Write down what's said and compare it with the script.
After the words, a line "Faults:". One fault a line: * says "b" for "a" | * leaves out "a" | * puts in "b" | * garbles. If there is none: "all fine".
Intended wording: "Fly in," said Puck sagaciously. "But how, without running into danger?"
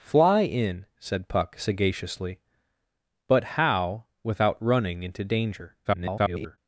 "Fly in," said Puck sagaciously. "But how, without running into danger?" [garbled]
Faults:
* garbles